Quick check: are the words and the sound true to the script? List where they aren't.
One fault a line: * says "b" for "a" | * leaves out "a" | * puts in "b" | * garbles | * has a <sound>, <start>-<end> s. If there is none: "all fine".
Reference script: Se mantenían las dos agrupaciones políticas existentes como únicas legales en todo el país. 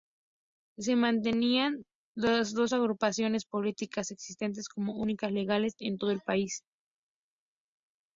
all fine